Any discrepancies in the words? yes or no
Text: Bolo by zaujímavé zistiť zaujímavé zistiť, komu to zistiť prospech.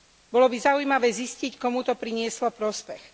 yes